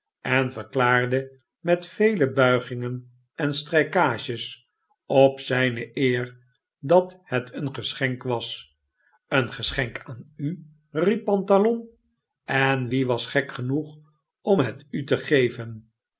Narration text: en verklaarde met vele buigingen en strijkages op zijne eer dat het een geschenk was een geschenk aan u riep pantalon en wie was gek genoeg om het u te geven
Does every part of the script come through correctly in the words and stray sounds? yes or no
yes